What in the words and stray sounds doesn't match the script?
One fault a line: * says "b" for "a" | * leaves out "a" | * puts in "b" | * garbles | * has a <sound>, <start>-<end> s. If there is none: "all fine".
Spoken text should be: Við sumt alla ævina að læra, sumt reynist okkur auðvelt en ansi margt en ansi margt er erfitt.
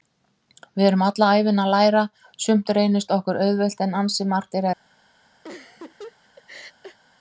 * says "erum" for "sumt"
* leaves out "en ansi margt"
* has a laugh, 5.4-7.0 s